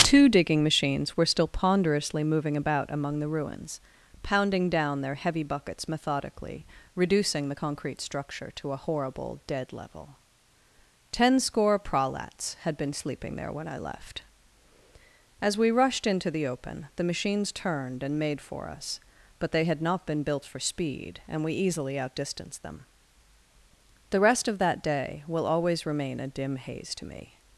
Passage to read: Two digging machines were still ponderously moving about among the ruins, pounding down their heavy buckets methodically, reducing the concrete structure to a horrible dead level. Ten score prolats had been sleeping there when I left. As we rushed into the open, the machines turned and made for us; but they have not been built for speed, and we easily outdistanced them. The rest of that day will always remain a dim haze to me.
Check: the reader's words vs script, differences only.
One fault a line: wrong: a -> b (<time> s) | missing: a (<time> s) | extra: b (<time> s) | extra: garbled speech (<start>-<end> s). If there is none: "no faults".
wrong: have -> had (19.6 s)